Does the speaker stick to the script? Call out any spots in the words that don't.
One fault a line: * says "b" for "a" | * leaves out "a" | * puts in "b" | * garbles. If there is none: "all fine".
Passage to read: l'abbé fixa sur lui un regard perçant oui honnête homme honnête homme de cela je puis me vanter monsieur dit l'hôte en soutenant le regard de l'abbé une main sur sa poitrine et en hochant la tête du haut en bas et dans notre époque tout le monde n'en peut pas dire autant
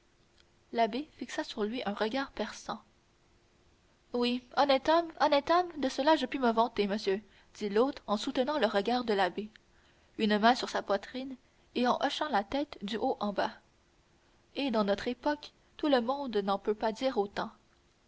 all fine